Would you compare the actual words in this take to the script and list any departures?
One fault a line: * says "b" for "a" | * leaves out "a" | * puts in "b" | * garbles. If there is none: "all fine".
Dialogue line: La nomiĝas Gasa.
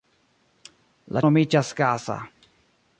all fine